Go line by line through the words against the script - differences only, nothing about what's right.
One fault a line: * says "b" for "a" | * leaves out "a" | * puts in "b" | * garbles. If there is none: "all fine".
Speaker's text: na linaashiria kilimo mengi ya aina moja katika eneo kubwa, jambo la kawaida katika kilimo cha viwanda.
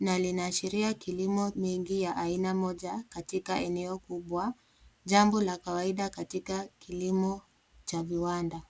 all fine